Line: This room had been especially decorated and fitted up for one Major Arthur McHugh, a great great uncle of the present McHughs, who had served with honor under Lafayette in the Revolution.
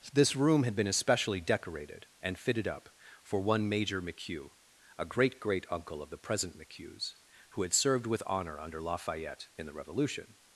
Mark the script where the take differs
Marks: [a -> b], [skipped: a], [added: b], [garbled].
This room had been especially decorated and fitted up for one Major [skipped: Arthur] McHugh, a great great uncle of the present McHughs, who had served with honor under Lafayette in the Revolution.